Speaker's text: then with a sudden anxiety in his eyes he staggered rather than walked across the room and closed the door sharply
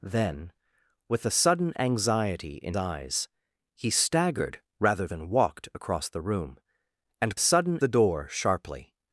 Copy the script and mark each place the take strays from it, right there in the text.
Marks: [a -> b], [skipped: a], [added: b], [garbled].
then with a sudden anxiety in [skipped: his] eyes he staggered rather than walked across the room and [closed -> sudden] the door sharply